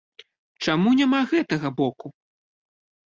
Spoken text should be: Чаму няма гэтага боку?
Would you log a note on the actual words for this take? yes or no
no